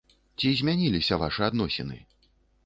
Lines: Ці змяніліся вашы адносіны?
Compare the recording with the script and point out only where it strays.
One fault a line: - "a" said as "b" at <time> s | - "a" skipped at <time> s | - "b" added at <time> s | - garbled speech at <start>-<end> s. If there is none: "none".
none